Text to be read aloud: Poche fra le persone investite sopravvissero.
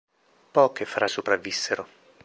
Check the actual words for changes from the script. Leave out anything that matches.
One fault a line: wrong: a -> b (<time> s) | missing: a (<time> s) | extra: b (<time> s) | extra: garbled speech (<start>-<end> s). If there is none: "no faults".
missing: le persone investite (1.1 s)